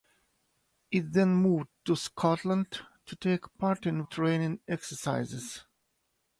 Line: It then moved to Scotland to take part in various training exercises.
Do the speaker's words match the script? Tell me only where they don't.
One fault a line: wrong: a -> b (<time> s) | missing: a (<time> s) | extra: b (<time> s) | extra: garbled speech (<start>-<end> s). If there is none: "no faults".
missing: various (4.0 s)